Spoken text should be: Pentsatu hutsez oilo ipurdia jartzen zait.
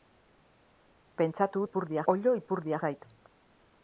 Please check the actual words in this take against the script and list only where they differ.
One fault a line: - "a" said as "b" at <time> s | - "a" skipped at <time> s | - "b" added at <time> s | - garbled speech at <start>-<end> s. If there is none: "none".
- "hutsez" said as "ipurdia" at 1.7 s
- "jartzen" skipped at 2.8 s